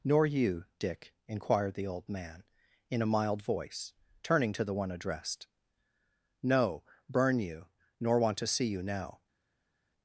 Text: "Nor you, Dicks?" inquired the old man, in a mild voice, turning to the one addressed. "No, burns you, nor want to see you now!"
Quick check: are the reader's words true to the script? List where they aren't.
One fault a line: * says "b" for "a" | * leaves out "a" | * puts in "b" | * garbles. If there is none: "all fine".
* says "Dick" for "Dicks"
* says "burn" for "burns"